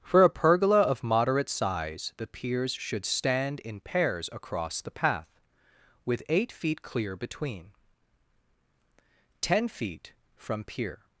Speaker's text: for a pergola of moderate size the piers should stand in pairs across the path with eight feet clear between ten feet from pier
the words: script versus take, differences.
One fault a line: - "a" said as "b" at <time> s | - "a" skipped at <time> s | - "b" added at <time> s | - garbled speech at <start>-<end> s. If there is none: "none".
none